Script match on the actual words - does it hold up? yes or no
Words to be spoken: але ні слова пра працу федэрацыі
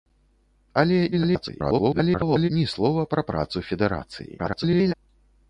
no